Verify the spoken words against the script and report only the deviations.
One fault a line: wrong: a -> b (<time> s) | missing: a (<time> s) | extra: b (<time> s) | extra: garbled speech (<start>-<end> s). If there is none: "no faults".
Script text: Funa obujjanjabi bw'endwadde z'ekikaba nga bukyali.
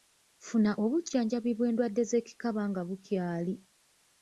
no faults